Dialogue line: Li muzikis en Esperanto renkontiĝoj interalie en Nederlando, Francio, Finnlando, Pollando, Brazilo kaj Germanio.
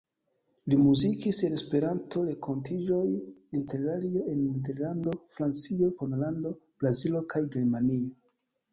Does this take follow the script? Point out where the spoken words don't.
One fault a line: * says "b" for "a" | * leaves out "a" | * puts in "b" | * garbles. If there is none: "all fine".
* leaves out "Finnlando"